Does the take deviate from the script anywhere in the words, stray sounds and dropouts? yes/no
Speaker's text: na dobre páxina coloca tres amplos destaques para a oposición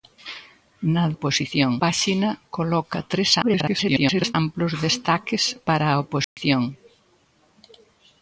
yes